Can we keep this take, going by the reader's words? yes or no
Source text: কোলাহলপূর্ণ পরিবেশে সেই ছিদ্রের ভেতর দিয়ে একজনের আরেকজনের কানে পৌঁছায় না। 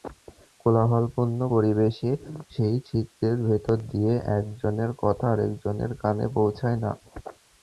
no